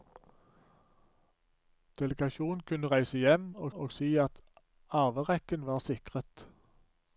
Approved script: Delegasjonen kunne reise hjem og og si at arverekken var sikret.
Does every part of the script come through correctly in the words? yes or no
yes